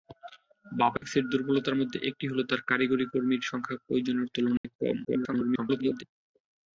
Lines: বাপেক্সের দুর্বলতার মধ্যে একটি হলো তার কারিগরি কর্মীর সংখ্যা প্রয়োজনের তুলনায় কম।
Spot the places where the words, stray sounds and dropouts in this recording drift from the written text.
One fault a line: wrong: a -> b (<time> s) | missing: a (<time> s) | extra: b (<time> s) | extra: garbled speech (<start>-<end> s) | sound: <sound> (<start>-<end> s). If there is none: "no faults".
sound: dropout (1.0-1.0 s)
sound: dropout (4.6-4.6 s)
extra: garbled speech (5.0-6.0 s)